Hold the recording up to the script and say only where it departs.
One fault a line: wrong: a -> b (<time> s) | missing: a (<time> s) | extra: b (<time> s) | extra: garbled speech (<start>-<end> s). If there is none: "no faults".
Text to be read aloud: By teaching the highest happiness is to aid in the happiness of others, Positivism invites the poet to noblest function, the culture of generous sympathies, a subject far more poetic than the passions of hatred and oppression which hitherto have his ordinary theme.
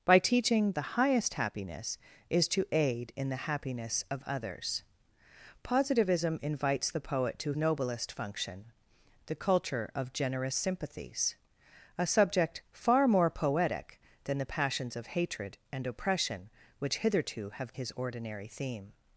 no faults